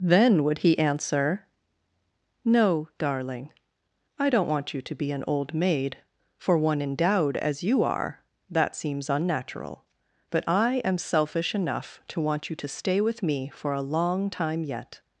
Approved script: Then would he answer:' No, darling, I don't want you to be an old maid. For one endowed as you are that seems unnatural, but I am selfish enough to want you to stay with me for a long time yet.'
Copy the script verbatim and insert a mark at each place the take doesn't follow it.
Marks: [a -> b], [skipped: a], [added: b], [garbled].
Then would he answer:' No, darling, I don't want you to be an old maid. For one endowed as you are that seems unnatural, but I am selfish enough to want you to stay with me for a long time yet.'